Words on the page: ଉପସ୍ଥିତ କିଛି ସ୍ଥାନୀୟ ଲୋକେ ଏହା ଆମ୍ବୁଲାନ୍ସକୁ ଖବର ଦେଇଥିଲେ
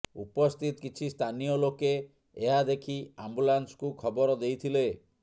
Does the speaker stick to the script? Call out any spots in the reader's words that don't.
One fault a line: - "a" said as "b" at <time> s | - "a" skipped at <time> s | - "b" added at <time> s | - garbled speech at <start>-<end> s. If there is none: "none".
- "ଦେଖି" added at 2.7 s